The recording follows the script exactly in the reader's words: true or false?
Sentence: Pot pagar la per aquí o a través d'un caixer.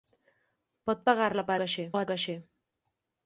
false